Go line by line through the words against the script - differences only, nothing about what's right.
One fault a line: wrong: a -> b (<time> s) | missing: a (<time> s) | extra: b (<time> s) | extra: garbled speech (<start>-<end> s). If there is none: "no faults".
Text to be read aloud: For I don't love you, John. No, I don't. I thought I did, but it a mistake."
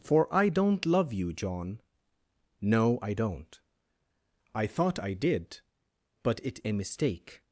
no faults